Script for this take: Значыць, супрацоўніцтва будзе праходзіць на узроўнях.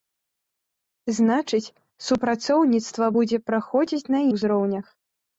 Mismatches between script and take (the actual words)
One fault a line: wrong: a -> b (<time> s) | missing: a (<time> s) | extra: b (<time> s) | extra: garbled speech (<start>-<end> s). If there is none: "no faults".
no faults